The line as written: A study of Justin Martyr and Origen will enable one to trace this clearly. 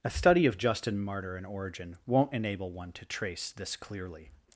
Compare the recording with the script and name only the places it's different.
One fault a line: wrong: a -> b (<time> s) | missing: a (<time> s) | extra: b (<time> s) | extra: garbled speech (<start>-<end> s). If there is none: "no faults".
wrong: will -> won't (2.1 s)